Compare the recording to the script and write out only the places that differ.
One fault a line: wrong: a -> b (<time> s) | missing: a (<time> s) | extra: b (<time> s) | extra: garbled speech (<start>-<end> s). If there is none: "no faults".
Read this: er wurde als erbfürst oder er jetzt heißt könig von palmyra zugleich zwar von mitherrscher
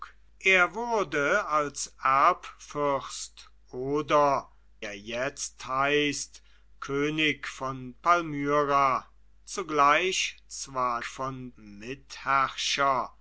no faults